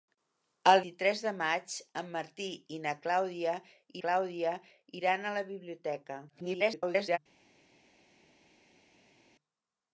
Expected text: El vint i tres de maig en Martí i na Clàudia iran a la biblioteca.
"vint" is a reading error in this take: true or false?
true